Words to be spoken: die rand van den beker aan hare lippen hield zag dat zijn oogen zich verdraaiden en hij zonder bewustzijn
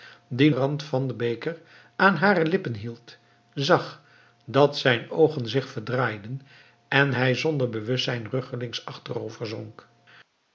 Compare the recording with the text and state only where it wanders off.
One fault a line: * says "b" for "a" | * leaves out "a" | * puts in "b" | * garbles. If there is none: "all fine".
all fine